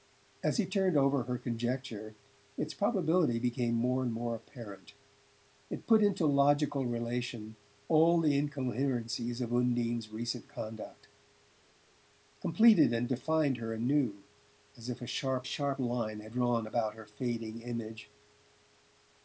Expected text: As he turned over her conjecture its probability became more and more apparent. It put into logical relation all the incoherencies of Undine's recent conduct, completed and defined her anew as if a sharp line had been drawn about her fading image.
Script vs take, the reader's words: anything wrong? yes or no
yes